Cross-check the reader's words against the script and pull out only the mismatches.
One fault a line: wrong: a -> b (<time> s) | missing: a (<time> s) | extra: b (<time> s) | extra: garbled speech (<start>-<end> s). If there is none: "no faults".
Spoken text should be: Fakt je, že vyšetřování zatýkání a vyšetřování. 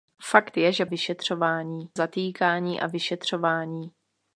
no faults